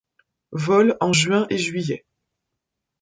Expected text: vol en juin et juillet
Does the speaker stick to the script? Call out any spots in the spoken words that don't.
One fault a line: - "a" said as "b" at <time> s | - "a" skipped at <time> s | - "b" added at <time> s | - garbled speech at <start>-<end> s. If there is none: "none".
none